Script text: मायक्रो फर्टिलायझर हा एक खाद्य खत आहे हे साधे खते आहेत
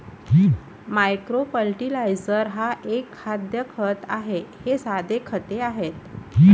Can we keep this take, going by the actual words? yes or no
yes